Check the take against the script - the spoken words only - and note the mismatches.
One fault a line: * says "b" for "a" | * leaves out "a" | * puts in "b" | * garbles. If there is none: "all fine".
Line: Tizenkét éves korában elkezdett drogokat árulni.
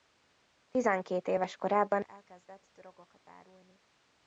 all fine